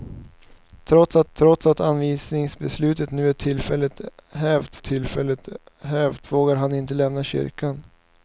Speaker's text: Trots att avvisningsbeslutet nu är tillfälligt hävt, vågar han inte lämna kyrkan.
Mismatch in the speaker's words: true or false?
true